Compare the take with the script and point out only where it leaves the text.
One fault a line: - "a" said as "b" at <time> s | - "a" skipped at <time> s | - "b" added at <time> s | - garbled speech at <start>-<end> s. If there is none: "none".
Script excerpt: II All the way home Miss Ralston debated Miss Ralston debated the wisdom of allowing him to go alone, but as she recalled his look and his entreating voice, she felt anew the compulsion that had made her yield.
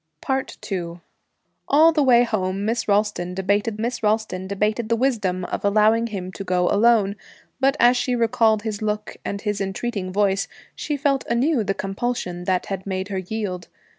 none